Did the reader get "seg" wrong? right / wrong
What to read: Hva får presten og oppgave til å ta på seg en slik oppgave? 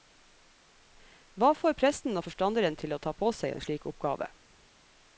right